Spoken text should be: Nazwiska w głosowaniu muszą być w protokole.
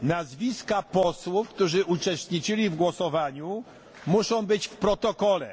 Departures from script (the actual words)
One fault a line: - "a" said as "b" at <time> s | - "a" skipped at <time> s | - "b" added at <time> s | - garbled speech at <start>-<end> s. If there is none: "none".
- "posłów którzy uczestniczyli" added at 0.8 s